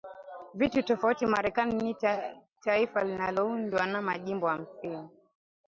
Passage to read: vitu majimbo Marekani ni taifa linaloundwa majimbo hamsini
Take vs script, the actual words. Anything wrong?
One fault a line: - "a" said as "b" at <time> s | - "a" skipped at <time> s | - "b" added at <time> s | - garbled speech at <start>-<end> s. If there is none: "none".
- "majimbo" said as "tofauti" at 0.8 s
- "na" added at 3.9 s